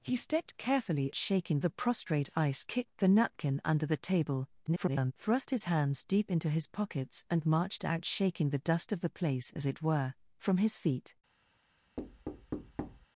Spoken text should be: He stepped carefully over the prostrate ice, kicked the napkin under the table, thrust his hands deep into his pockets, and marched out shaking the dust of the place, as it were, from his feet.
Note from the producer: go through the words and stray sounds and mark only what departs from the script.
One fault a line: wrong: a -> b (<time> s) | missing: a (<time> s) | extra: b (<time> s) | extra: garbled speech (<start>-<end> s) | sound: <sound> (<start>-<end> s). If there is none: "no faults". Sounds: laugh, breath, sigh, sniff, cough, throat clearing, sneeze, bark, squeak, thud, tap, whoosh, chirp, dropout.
wrong: over -> shaking (1.1 s)
extra: garbled speech (4.7-5.1 s)
sound: thud (12.0-13.1 s)